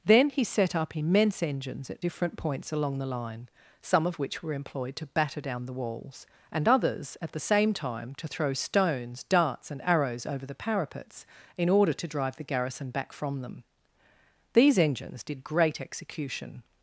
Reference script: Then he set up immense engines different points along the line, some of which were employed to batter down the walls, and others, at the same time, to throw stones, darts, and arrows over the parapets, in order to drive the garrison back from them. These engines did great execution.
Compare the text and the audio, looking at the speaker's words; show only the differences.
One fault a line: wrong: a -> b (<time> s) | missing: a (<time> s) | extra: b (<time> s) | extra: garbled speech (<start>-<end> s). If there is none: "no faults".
extra: at (1.9 s)